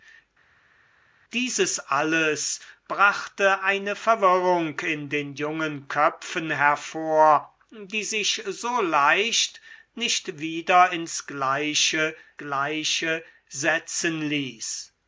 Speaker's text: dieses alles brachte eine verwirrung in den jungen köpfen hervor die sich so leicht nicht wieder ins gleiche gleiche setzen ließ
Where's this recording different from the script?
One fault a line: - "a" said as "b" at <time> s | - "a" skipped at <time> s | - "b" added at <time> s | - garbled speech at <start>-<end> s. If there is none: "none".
none